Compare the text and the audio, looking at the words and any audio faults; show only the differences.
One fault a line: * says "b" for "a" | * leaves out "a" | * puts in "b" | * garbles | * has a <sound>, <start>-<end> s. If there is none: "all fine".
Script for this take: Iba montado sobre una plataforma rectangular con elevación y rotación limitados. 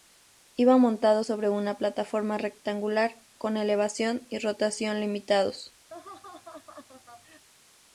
* has a laugh, 5.9-7.4 s